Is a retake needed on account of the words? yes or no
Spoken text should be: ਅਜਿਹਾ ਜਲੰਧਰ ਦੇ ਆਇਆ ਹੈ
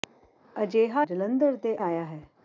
no